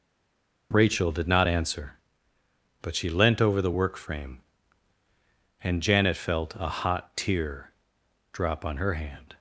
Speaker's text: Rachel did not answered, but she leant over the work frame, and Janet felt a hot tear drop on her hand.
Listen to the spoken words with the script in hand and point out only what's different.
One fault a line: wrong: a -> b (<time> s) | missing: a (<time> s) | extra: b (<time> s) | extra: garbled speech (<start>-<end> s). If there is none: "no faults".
wrong: answered -> answer (1.5 s)